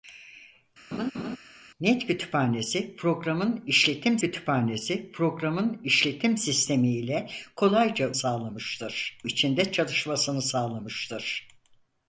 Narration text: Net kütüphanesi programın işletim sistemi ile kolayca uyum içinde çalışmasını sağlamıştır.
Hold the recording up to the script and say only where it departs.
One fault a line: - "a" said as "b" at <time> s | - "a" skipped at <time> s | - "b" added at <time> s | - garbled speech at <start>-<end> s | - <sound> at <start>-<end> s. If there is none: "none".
- laugh at 0.9-1.4 s
- "kütüphanesi programın işletim" added at 4.2 s
- "uyum" said as "sağlamıştır" at 8.1 s